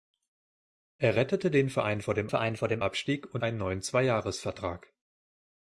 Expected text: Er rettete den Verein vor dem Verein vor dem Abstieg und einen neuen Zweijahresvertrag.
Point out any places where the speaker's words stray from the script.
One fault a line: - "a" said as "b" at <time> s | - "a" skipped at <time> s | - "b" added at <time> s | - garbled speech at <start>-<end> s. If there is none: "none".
none